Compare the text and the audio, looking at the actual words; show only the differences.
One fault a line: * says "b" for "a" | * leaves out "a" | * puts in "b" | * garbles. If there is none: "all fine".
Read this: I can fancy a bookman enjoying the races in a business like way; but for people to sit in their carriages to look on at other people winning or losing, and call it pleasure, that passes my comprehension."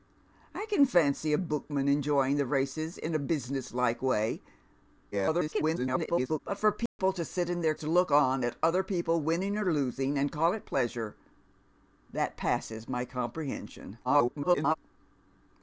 * garbles
* leaves out "carriages"
* garbles